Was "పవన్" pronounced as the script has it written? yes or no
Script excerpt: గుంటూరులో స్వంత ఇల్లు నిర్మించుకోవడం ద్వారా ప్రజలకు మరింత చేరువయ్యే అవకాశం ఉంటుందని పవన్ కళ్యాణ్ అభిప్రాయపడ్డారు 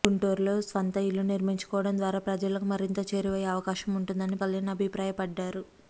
no